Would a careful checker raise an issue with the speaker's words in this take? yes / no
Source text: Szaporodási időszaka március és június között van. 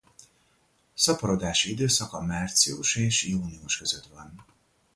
no